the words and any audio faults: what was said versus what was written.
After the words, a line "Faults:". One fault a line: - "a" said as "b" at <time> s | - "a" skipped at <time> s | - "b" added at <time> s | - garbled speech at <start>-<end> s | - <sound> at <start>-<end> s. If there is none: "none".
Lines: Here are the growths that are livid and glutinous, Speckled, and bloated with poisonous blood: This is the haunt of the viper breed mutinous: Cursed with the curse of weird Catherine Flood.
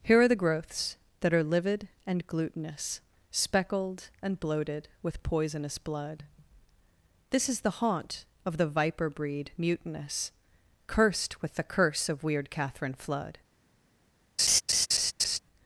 Here are the growths that are livid and glutinous, Speckled, and bloated with poisonous blood: This is the haunt of the viper breed mutinous: Cursed with the curse of weird Catherine Flood.
Faults:
- laugh at 14.4-15.4 s